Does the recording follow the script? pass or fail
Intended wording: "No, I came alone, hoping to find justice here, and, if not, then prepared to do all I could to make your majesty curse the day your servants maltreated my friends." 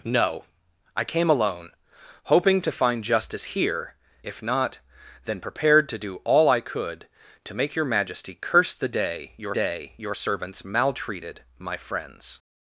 fail